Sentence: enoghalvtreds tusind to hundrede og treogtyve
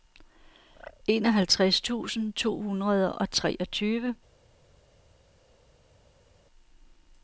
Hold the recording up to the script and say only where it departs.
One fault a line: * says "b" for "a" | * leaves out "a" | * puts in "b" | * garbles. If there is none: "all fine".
all fine